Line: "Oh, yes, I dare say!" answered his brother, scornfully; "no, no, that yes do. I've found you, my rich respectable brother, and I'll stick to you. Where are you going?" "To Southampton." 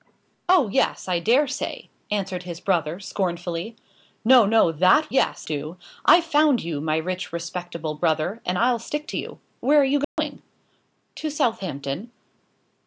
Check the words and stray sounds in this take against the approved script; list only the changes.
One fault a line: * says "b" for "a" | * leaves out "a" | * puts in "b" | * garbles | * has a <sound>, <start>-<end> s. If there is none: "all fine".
* has a dropout, 10.0-10.2 s